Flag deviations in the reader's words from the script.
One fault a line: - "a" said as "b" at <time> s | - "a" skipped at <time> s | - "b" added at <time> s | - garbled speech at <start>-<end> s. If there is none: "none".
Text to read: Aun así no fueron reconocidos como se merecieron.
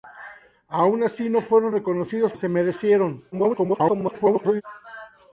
- "como" skipped at 2.3 s
- garbled speech at 3.3-4.6 s